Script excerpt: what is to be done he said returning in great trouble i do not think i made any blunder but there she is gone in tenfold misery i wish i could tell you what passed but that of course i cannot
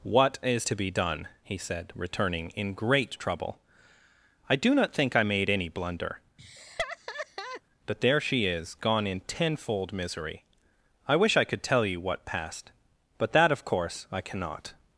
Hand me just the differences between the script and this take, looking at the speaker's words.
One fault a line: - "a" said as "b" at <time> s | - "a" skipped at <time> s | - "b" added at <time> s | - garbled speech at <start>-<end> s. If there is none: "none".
none